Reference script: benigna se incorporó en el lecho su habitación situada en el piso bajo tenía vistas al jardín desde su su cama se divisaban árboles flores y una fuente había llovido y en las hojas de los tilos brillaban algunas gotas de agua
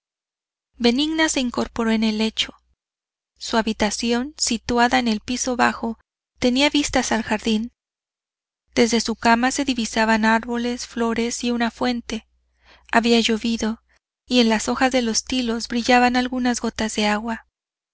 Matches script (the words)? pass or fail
fail